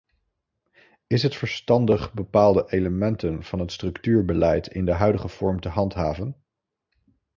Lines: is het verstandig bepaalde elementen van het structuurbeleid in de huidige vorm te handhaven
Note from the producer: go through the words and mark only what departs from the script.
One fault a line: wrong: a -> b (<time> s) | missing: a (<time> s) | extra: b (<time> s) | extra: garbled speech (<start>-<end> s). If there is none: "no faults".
no faults